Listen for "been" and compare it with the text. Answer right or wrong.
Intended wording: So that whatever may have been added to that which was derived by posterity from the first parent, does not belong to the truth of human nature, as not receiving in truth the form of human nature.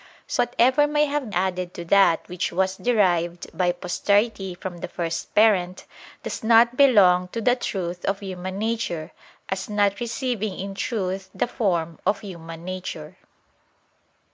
wrong